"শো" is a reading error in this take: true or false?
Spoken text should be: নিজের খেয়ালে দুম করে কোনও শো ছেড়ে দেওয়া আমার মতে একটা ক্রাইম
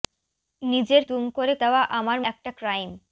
true